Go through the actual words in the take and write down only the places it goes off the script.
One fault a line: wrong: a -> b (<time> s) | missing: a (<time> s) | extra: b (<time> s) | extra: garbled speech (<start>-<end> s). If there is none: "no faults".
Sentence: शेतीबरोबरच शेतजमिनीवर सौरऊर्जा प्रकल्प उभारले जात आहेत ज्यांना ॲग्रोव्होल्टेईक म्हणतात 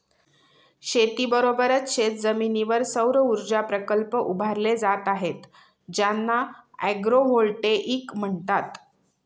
no faults